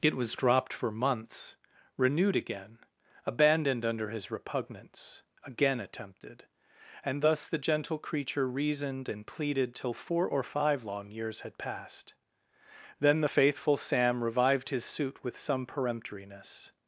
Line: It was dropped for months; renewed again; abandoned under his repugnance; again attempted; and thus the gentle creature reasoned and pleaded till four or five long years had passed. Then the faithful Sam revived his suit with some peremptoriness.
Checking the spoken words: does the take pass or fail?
pass